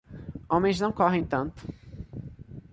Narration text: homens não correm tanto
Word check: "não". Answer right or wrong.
right